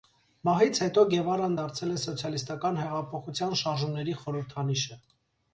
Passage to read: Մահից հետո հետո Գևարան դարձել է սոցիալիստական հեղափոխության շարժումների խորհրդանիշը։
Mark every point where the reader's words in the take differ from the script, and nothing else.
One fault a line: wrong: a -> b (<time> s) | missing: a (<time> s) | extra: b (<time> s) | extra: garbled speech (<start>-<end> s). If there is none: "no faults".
missing: հետո (1.0 s)